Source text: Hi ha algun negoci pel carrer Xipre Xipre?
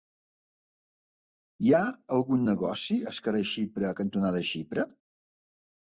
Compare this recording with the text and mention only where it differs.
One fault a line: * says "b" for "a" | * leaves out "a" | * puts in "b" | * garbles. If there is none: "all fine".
* says "al" for "pel"
* puts in "cantonada"